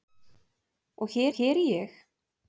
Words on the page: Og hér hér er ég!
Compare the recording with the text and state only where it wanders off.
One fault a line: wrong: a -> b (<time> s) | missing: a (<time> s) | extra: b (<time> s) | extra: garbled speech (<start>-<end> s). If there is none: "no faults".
no faults